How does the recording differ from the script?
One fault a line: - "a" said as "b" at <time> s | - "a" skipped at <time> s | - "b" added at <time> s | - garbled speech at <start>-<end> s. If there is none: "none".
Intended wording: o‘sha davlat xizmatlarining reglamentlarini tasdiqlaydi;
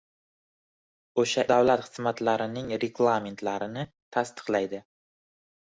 none